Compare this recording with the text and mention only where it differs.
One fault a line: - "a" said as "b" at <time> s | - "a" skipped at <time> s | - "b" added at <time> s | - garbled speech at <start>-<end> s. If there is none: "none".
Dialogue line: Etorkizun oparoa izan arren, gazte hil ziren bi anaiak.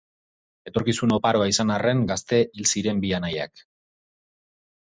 none